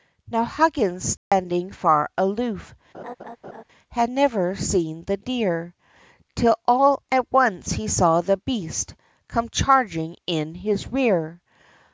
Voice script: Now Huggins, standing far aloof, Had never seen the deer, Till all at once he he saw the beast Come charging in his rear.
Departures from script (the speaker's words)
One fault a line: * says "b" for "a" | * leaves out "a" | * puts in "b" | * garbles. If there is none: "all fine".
* leaves out "he"